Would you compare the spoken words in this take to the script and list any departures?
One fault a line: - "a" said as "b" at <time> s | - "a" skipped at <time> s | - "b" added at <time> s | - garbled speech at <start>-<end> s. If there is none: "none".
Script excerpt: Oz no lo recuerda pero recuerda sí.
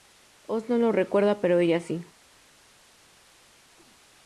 - "recuerda" said as "ella" at 1.6 s